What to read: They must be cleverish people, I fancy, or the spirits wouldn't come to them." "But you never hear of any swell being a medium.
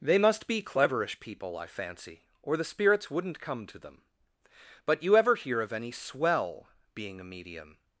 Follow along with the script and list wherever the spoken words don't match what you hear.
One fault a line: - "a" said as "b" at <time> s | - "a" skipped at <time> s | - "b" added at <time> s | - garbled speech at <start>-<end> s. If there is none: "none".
- "never" said as "ever" at 5.2 s